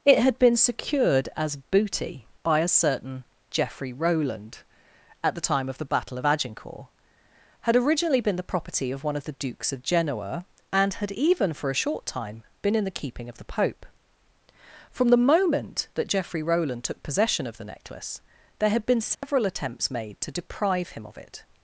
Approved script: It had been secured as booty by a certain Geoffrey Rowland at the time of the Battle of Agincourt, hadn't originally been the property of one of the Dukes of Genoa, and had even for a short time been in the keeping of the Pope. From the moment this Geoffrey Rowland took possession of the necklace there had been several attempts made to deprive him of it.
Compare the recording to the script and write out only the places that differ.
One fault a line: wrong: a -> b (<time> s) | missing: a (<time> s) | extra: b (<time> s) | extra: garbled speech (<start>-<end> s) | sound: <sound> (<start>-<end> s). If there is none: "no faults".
wrong: hadn't -> had (7.6 s)
wrong: this -> that (16.0 s)
sound: dropout (19.1-19.2 s)